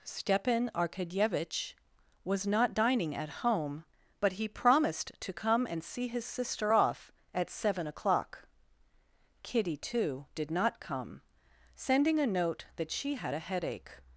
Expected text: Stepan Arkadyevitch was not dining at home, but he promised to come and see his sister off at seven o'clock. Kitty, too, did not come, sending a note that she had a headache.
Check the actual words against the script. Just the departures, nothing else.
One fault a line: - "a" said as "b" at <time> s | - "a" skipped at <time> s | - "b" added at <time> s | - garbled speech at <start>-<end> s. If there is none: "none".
none